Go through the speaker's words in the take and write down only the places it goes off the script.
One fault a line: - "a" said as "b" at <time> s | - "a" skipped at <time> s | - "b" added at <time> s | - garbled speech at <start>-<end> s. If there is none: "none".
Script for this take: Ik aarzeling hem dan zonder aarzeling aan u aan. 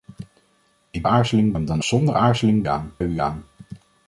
none